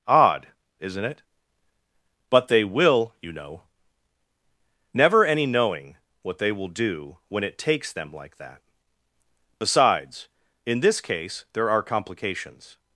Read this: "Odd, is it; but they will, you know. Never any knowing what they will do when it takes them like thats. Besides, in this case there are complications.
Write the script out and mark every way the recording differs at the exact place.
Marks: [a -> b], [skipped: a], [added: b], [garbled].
"Odd, [is -> isn't] it; but they will, you know. Never any knowing what they will do when it takes them like [thats. -> that] Besides, in this case there are complications.